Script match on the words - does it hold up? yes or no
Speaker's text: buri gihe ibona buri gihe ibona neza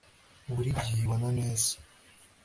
no